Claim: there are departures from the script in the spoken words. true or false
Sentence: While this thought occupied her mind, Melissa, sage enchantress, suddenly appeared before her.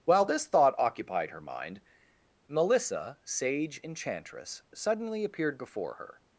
false